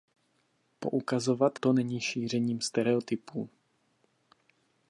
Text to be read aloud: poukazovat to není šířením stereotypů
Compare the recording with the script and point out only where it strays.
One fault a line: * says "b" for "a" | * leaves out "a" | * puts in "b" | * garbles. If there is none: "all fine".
all fine